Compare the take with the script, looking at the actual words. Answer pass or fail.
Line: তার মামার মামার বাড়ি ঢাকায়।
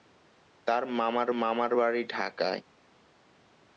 pass